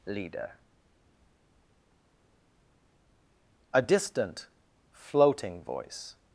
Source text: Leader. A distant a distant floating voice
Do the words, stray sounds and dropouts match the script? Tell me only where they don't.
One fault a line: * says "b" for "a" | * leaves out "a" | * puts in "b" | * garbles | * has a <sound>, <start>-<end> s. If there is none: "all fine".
* leaves out "a distant"